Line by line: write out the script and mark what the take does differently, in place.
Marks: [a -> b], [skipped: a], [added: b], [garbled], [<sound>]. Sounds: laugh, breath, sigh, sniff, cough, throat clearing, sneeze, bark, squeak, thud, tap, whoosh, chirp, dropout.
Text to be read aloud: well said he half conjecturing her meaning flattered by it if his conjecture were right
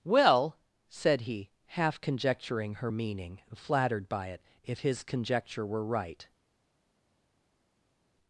well said he half conjecturing her meaning flattered by it if his conjecture were right